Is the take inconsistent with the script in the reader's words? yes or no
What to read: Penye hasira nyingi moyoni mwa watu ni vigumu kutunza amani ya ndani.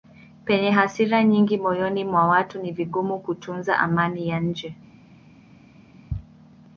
yes